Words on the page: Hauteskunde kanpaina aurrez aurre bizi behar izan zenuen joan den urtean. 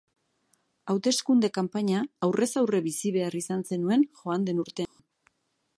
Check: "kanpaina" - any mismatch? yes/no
no